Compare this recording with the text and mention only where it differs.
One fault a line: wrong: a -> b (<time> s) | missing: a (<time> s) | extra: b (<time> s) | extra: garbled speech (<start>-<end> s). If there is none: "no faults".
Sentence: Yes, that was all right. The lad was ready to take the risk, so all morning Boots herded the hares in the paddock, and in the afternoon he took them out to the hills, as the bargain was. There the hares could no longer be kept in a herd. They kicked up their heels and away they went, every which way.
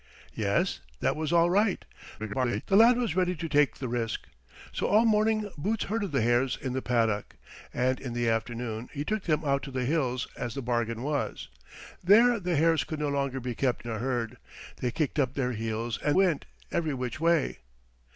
extra: garbled speech (2.2-2.6 s)
missing: in (13.9 s)
missing: away they (16.2 s)